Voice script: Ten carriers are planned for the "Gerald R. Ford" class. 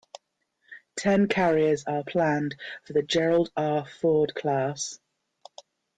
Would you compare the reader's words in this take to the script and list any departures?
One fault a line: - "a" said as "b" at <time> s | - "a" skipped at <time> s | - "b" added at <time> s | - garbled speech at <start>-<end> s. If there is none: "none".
none